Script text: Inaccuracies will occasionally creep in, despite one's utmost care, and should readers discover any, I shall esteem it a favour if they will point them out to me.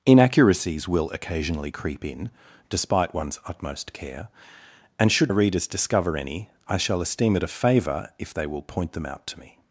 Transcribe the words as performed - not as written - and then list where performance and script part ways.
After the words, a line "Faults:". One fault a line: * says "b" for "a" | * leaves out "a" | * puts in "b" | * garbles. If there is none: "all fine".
Inaccuracies will occasionally creep in, despite one's utmost care, and should readers discover any, I shall esteem it a favour if they will point them out to me.
Faults:
all fine